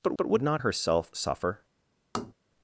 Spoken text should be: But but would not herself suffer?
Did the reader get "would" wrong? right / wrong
right